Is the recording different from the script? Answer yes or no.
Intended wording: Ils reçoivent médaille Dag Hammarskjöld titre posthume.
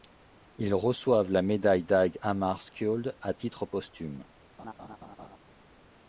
yes